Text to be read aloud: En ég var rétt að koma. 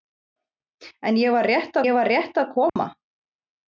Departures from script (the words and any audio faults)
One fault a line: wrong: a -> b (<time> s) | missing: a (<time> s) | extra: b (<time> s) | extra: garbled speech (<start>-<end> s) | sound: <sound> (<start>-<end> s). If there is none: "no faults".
extra: ég var rétt (1.9 s)
sound: dropout (2.7-2.8 s)